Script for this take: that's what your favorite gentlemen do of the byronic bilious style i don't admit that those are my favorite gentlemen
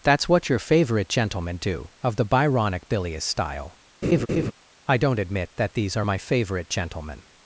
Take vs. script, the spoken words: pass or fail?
fail